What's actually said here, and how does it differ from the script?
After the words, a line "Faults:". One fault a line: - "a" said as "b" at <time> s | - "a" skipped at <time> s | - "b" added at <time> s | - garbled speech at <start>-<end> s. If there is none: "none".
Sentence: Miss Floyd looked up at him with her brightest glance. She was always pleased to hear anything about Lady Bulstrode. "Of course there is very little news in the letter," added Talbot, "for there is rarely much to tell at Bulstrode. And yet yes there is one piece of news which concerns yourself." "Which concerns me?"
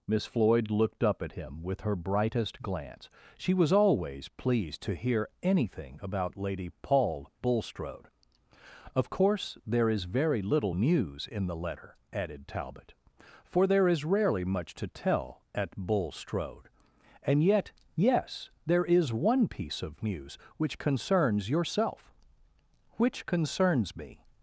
Miss Floyd looked up at him with her brightest glance. She was always pleased to hear anything about Lady paul Bulstrode. "Of course there is very little news in the letter," added Talbot, "for there is rarely much to tell at Bulstrode. And yet yes there is one piece of news which concerns yourself." "Which concerns me?"
Faults:
- "paul" added at 6.8 s